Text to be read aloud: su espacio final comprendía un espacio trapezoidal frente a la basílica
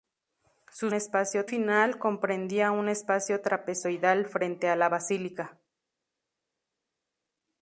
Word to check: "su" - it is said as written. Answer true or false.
true